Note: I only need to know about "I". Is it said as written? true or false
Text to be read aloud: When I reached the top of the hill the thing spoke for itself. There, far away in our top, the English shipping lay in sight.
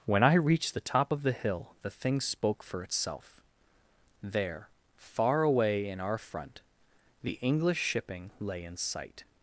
true